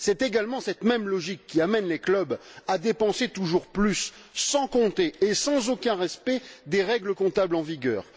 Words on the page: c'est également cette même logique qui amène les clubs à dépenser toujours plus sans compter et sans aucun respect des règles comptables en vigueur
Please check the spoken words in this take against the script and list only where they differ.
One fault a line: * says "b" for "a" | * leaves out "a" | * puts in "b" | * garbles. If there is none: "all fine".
all fine